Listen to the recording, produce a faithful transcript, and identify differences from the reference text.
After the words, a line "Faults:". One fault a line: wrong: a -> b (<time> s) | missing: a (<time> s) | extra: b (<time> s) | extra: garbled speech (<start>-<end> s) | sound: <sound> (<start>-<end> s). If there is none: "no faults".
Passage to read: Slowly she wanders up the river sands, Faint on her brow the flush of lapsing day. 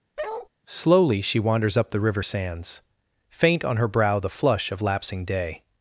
Slowly she wanders up the river sands, Faint on her brow the flush of lapsing day.
Faults:
sound: bark (0.2-0.5 s)